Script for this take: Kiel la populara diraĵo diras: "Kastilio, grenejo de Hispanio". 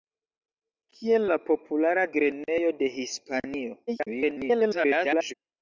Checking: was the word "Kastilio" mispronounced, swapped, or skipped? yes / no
yes